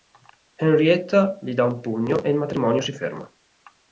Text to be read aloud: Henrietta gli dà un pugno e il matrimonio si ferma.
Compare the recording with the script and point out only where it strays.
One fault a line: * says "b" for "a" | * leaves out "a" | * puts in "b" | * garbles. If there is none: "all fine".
all fine